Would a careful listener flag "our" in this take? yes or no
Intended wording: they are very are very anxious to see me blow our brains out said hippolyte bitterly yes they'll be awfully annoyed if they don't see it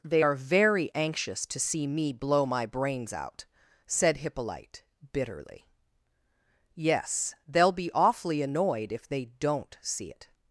yes